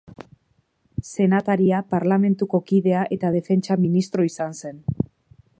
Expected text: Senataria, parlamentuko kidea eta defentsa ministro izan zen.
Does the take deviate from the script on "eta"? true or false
false